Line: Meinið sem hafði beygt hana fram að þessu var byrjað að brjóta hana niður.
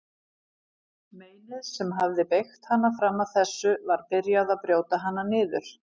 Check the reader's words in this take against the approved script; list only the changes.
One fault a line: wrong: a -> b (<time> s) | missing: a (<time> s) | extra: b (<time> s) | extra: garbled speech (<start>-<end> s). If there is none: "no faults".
no faults